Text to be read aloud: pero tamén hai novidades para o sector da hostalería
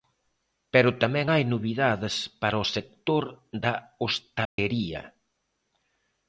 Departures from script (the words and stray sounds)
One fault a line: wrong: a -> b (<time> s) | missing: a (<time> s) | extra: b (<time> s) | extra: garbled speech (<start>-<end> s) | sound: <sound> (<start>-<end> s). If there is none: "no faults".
sound: dropout (4.4-4.6 s)